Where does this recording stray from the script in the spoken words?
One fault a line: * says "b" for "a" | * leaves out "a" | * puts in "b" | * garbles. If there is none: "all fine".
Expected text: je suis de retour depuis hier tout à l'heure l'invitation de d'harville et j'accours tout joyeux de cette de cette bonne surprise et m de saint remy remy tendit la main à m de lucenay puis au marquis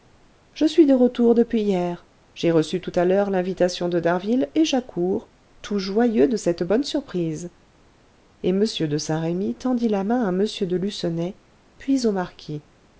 * puts in "j'ai reçu"
* leaves out "de cette"
* leaves out "remy"